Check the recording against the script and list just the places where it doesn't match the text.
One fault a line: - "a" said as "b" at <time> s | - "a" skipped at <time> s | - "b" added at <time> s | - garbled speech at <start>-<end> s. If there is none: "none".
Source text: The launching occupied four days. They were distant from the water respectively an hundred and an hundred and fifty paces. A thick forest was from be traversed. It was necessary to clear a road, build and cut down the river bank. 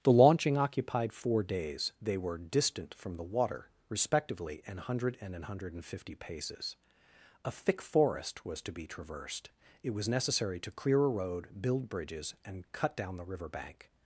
- "from" said as "to" at 8.6 s
- "bridges" added at 11.9 s